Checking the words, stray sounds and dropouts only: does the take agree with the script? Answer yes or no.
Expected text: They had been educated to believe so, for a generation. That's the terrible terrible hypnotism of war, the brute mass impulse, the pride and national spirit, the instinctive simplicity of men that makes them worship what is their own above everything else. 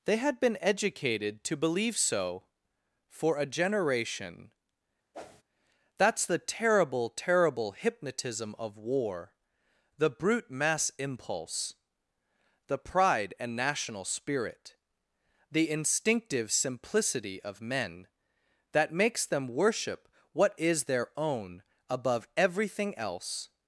no